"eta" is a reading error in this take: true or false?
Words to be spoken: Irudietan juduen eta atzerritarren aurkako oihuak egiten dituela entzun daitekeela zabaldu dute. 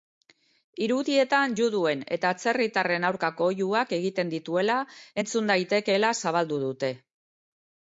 false